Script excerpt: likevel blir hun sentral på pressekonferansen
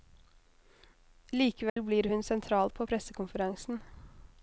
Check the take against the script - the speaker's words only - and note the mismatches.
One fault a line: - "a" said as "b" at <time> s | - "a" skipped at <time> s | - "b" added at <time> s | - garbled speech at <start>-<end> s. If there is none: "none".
none